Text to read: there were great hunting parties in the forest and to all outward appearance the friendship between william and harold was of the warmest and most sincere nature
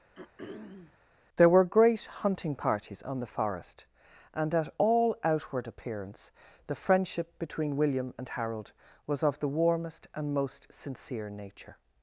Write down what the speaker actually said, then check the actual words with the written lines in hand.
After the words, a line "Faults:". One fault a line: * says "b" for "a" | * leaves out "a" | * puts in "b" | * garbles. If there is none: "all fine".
there were great hunting parties on the forest and at all outward appearance the friendship between william and harold was of the warmest and most sincere nature
Faults:
* says "on" for "in"
* says "at" for "to"